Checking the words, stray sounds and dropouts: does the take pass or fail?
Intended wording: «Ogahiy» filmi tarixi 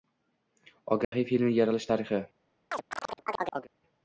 fail